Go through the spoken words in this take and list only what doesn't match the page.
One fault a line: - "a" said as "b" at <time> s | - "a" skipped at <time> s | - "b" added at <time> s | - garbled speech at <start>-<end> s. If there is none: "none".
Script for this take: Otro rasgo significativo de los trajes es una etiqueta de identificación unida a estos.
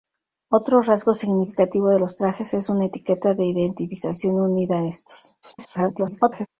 - garbled speech at 5.4-6.5 s